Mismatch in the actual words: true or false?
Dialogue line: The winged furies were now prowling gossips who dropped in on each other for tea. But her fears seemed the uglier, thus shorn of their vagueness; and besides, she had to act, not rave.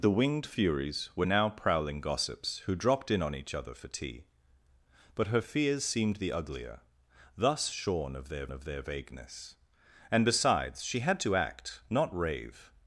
true